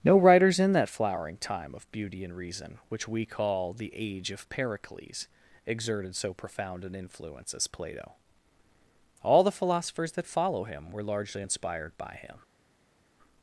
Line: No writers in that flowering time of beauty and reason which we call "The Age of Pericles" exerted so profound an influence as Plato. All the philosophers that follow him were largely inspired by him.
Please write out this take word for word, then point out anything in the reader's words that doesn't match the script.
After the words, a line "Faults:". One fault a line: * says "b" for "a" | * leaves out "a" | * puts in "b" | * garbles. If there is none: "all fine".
No writers in that flowering time of beauty and reason which we call "The Age of Pericles" exerted so profound an influence as Plato. All the philosophers that follow him were largely inspired by him.
Faults:
all fine